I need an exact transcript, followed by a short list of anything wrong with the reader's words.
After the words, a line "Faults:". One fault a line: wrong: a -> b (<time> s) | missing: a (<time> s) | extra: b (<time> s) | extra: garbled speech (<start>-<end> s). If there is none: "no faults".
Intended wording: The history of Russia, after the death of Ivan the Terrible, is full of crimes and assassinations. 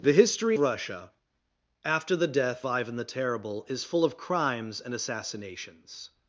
The history Russia, after the death Ivan the Terrible, is full of crimes and assassinations.
Faults:
missing: of (0.6 s)
missing: of (2.6 s)